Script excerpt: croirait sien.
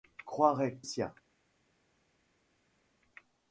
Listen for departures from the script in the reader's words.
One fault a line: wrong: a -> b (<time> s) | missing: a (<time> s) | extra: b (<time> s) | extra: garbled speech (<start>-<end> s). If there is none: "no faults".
no faults